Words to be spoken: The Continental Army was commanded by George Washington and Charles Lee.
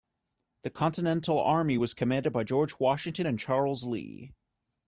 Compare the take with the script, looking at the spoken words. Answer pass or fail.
pass